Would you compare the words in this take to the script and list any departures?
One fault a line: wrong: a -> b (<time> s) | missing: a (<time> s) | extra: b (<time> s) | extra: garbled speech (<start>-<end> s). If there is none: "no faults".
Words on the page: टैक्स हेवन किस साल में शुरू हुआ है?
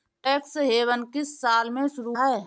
missing: हुआ (2.1 s)